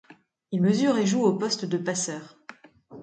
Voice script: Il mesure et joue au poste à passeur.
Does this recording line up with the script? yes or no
no